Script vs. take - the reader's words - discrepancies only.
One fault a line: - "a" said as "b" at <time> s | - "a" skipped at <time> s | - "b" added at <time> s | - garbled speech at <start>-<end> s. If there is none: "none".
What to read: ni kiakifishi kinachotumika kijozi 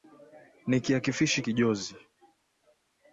- "kinachotumika" skipped at 1.4 s